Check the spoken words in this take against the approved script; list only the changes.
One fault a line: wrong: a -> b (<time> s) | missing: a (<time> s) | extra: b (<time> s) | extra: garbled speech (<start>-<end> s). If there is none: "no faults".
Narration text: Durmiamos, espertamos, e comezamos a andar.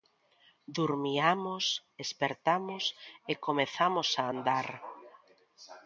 no faults